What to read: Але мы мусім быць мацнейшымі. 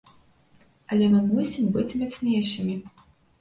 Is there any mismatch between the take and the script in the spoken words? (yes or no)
no